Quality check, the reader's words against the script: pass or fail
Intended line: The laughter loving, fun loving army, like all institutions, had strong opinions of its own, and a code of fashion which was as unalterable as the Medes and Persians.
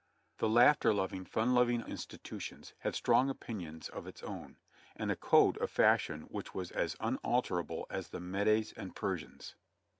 fail